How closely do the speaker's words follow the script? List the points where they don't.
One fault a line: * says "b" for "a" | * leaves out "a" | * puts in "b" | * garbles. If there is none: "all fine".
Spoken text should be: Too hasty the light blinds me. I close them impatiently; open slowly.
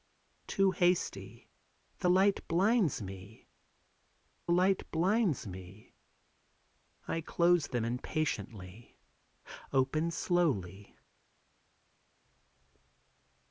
* puts in "light blinds me"